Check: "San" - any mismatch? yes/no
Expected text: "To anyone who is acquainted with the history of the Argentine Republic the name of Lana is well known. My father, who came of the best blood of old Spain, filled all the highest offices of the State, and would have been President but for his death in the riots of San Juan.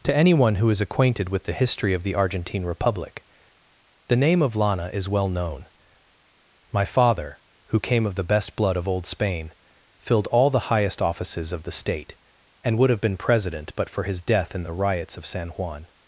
no